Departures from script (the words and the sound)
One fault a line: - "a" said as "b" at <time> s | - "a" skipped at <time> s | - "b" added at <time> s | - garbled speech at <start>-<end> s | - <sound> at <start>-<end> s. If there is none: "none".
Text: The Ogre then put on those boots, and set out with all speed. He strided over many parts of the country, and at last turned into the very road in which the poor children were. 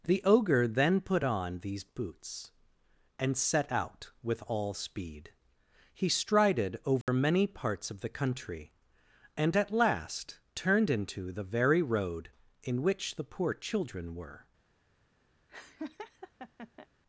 - "those" said as "these" at 1.6 s
- dropout at 7.0-7.1 s
- laugh at 15.5-16.9 s